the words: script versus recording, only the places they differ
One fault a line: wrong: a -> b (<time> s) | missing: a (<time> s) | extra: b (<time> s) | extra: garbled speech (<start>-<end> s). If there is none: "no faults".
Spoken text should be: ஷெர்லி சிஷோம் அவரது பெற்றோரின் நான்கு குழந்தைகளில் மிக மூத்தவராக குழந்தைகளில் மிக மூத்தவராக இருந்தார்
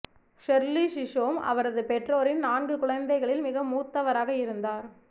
missing: குழந்தைகளில் மிக மூத்தவராக (4.3 s)